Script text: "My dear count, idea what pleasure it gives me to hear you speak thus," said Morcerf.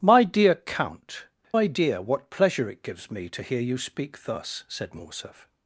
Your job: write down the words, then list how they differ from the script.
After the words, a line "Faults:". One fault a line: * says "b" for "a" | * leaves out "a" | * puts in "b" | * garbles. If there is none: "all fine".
"My dear count, idea what pleasure it gives me to hear you speak thus," said Morcerf.
Faults:
all fine